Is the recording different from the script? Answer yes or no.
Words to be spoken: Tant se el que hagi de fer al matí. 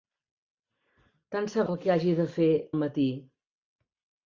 no